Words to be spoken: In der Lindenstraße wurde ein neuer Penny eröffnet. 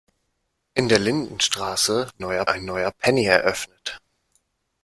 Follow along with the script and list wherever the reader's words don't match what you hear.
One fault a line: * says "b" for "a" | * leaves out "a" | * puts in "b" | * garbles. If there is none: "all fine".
* says "neuer" for "wurde"